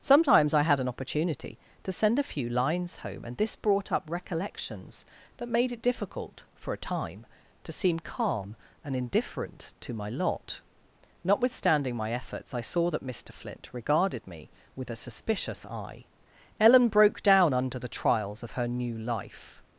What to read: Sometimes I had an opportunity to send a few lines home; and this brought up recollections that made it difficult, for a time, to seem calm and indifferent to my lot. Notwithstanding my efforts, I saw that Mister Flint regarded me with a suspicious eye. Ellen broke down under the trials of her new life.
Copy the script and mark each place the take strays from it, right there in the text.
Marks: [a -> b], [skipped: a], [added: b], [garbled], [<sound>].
Sometimes I had an opportunity to send a few lines home; and this brought up recollections that made it difficult, for a time, to seem calm and indifferent to my lot. Notwithstanding my efforts, I saw that Mister Flint regarded me with a suspicious eye. Ellen broke down under the trials of her new life.